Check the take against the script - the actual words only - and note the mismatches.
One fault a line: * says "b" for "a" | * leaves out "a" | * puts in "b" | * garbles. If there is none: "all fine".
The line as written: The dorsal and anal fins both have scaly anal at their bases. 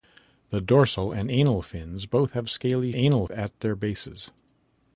all fine